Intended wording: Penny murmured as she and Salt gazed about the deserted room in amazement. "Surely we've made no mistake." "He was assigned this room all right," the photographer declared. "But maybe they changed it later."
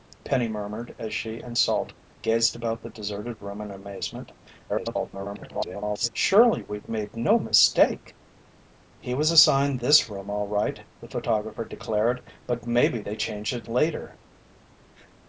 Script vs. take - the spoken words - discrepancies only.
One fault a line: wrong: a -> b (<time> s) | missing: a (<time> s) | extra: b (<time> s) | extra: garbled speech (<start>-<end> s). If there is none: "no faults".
extra: garbled speech (4.7-6.1 s)